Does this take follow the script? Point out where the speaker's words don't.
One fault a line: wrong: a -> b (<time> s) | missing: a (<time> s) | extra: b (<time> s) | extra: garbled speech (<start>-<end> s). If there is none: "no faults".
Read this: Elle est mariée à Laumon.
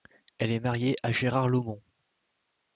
extra: Gérard (1.1 s)